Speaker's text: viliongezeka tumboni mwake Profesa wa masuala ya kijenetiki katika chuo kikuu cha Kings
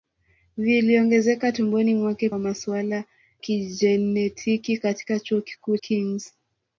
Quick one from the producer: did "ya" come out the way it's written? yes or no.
no